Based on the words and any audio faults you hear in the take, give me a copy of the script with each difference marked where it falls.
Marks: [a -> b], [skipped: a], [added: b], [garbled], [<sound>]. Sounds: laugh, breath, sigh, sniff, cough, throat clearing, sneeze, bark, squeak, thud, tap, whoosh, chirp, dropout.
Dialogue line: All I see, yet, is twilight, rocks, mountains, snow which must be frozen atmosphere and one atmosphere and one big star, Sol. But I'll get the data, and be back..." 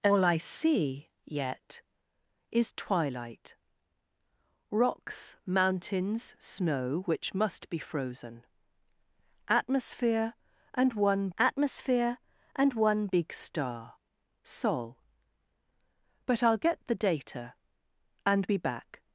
All I see, yet, is twilight, rocks, mountains, snow which must be frozen atmosphere and one atmosphere and one big star, Sol. But I'll get the data, and be back..."